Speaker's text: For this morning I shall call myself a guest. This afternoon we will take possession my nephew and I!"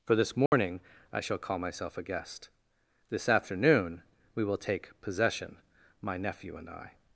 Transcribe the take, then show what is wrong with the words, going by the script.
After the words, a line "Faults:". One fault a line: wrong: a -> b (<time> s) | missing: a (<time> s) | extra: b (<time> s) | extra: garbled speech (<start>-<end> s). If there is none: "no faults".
For this morning I shall call myself a guest. This afternoon we will take possession my nephew and I!"
Faults:
no faults